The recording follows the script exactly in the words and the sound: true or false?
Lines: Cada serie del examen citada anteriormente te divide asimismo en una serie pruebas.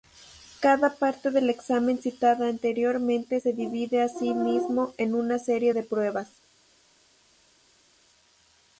false